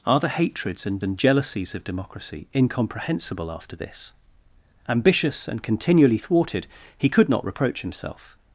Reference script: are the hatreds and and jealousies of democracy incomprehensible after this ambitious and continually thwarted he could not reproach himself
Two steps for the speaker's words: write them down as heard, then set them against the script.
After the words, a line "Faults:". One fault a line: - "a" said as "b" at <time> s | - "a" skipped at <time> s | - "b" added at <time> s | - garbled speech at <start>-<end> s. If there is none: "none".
are the hatreds and and jealousies of democracy incomprehensible after this ambitious and continually thwarted he could not reproach himself
Faults:
none